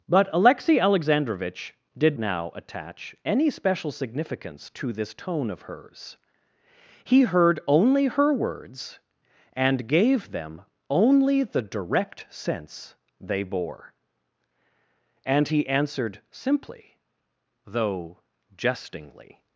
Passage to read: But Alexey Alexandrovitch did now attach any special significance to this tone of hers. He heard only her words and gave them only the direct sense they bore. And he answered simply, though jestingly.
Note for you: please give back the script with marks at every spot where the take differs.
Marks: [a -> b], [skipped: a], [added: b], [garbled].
But Alexey Alexandrovitch did now attach any special significance to this tone of hers. He heard only her words and gave them only the direct sense they bore. And he answered simply, though jestingly.